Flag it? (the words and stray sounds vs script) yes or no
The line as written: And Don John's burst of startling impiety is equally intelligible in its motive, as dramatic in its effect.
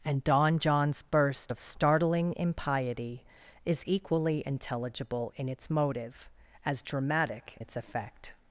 yes